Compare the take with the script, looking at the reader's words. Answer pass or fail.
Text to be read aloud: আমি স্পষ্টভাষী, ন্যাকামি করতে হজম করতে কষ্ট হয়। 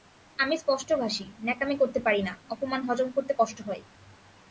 fail